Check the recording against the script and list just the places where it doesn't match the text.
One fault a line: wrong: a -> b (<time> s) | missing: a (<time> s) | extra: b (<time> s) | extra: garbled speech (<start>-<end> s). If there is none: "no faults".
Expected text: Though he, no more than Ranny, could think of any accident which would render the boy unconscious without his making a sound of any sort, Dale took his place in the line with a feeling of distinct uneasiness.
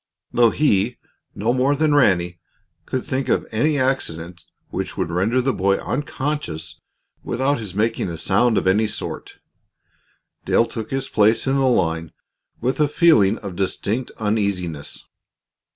no faults